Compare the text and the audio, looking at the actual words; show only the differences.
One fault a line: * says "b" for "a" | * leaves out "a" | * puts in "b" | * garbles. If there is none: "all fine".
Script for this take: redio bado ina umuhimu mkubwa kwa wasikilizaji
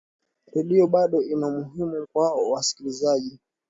* leaves out "mkubwa"